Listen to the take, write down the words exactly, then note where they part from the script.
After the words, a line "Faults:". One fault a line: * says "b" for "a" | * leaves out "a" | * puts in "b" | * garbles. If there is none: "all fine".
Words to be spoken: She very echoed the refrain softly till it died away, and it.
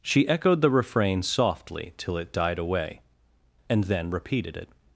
She echoed the refrain softly till it died away, and then repeated it.
Faults:
* leaves out "very"
* puts in "then repeated"